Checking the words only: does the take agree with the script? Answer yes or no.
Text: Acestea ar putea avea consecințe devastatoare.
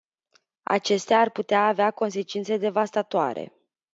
yes